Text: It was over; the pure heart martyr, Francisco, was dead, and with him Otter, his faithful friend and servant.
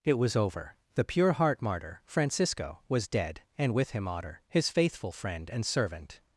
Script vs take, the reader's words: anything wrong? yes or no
no